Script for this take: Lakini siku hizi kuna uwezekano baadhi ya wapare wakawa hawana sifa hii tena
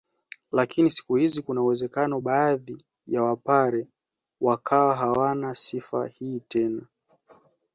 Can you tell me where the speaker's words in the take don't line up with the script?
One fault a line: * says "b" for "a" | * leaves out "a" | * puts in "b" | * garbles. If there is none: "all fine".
all fine